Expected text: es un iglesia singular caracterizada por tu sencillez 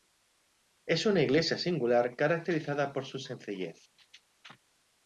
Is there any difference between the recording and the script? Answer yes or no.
yes